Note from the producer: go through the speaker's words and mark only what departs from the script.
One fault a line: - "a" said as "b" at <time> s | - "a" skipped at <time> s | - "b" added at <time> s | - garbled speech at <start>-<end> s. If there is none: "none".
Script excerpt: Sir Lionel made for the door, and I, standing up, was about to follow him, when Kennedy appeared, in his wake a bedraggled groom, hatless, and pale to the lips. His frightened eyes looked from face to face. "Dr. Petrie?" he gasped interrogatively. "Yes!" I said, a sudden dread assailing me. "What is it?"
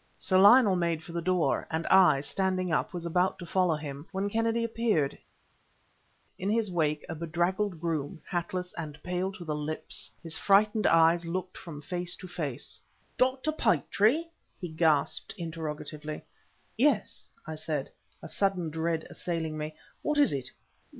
none